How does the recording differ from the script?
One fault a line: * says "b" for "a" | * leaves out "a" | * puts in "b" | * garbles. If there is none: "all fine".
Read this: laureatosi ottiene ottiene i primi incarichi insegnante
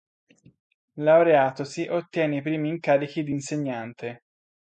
* leaves out "ottiene"
* puts in "di"